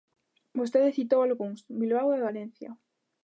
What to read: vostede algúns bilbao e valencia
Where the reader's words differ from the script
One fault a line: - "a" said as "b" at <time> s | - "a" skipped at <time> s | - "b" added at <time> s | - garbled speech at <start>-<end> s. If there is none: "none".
- "citou" added at 1.0 s